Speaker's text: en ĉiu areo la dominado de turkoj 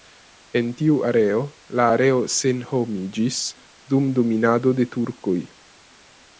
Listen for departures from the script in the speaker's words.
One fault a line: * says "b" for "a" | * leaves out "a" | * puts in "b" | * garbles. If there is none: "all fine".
* says "tiu" for "ĉiu"
* puts in "areo senhomiĝis dum"